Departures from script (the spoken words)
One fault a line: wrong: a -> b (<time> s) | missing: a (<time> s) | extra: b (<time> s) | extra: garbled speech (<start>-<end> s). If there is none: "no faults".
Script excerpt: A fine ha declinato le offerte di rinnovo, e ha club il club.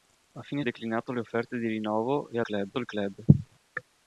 no faults